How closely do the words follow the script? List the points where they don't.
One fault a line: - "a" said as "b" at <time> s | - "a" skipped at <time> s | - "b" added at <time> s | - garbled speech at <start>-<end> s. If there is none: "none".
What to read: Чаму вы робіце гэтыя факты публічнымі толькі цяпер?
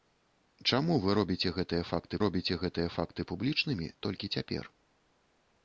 - "робіце гэтыя факты" added at 2.2 s